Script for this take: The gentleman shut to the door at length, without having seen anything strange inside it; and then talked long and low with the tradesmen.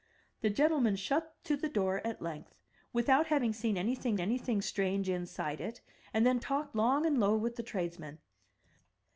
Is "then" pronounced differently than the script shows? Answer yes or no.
no